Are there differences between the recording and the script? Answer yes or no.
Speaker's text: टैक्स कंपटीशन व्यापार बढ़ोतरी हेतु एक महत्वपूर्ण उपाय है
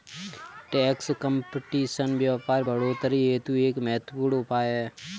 no